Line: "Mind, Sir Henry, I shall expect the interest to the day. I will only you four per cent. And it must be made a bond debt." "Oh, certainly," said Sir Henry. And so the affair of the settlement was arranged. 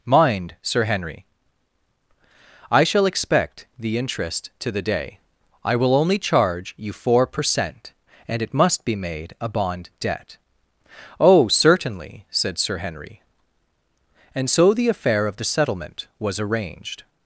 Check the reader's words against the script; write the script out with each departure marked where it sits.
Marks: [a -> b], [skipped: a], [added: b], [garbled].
"Mind, Sir Henry, I shall expect the interest to the day. I will only [added: charge] you four per cent. And it must be made a bond debt." "Oh, certainly," said Sir Henry. And so the affair of the settlement was arranged.